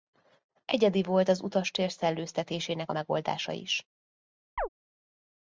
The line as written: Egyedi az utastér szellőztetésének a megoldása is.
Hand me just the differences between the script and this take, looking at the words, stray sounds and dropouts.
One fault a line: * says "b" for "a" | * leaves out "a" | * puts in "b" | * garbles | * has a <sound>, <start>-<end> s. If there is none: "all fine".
* puts in "volt"
* has a chirp, 4.6-4.7 s